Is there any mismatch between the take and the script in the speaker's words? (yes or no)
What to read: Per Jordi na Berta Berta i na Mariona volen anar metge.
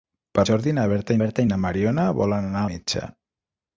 no